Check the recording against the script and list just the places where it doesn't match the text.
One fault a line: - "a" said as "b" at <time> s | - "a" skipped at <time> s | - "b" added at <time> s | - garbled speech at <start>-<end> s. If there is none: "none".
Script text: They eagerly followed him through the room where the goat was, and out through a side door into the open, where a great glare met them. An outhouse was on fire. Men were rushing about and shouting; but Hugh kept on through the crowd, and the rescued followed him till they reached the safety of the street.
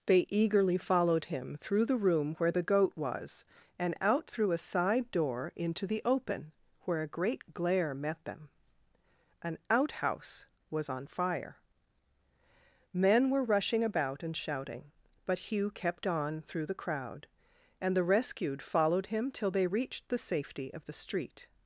none